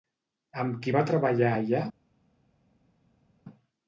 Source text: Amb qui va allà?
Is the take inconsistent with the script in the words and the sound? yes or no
yes